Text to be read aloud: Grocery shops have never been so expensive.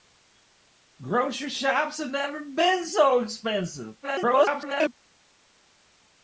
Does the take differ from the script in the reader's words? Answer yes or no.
yes